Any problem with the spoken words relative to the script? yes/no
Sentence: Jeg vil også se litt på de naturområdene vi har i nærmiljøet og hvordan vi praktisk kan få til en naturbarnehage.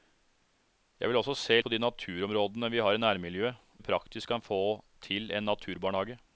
yes